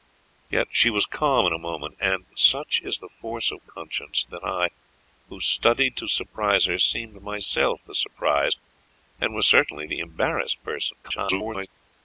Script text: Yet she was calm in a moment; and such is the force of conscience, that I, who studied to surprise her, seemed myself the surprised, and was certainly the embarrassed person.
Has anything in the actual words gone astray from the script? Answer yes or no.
yes